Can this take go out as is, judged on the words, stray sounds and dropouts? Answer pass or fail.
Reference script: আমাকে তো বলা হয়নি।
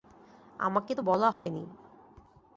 fail